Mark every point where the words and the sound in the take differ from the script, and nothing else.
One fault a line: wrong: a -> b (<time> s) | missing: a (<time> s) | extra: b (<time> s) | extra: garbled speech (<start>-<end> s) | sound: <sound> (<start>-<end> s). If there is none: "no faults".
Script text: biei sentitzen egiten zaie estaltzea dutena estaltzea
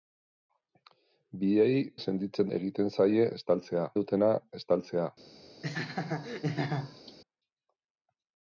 sound: laugh (5.6-7.2 s)